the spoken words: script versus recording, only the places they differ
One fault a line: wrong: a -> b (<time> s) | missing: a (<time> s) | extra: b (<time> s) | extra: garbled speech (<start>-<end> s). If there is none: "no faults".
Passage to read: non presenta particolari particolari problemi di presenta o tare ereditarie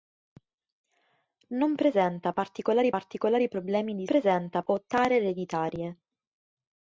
no faults